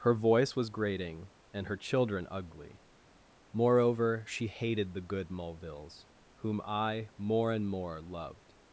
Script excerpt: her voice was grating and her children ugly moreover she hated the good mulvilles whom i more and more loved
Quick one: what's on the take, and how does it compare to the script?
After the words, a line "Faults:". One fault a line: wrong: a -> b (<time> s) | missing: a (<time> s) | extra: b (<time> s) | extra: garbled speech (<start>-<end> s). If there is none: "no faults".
her voice was grating and her children ugly moreover she hated the good mulvilles whom i more and more loved
Faults:
no faults